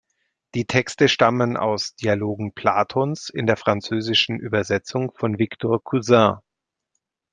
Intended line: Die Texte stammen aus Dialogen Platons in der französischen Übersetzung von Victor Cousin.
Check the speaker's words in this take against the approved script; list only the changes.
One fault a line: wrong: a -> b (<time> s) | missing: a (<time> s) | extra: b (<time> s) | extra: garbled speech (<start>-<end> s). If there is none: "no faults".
no faults